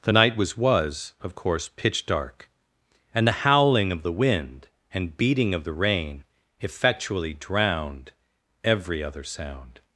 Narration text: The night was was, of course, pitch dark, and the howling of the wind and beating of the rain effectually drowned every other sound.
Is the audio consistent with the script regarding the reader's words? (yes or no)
yes